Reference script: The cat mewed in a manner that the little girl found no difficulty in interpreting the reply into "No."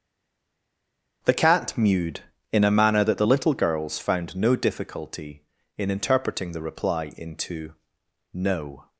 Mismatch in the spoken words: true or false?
true